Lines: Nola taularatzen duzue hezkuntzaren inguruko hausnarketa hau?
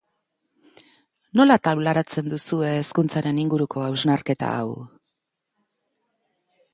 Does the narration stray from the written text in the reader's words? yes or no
no